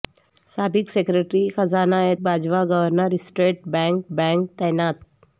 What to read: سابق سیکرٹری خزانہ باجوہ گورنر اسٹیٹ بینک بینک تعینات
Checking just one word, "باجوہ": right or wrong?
right